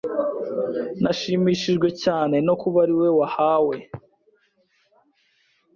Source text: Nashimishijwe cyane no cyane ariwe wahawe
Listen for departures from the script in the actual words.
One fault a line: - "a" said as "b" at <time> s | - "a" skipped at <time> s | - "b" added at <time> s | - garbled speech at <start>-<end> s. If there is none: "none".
- "cyane" said as "kuba" at 2.6 s